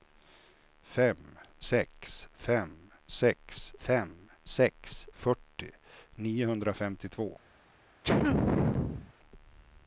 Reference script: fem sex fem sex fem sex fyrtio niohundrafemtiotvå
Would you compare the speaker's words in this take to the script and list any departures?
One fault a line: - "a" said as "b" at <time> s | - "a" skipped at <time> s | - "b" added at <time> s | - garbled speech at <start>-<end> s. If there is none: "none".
none